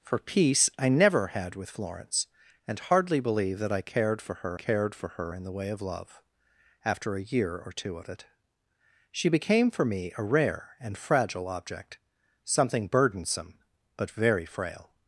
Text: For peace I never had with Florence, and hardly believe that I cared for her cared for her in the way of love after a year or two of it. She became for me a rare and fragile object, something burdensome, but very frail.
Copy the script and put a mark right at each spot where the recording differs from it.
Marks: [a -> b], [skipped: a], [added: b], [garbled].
For peace I never had with Florence, and hardly believe that I cared for her cared for her in the way of love after a year or two of it. She became for me a rare and fragile object, something burdensome, but very frail.